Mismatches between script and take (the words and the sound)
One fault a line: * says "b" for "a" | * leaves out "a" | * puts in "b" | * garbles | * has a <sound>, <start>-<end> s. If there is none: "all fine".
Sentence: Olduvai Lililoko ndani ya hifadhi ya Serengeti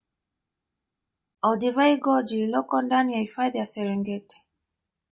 * puts in "Gorge"